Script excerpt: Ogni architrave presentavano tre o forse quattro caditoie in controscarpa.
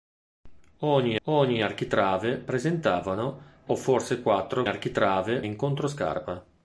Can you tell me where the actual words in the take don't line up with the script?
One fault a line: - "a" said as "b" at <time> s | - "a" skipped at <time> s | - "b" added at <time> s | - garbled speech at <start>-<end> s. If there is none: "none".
- "ogni" added at 1.2 s
- "tre" skipped at 3.4 s
- "caditoie" said as "architrave" at 4.7 s